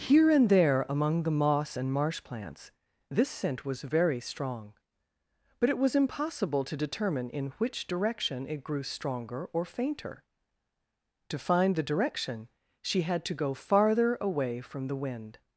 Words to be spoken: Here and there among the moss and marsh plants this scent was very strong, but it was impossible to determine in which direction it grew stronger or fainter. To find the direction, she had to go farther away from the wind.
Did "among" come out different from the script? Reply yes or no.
no